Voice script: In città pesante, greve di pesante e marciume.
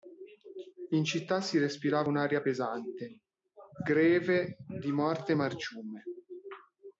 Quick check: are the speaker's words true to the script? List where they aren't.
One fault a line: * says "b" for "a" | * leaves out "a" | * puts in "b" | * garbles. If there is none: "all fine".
* puts in "si respirava un'aria"
* says "morte" for "pesante"